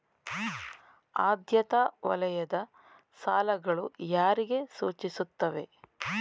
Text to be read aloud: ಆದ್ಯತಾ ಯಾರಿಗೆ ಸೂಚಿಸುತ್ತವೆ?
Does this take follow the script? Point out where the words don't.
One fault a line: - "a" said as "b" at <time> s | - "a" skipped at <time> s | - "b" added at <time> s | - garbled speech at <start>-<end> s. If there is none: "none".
- "ವಲಯದ ಸಾಲಗಳು" added at 2.1 s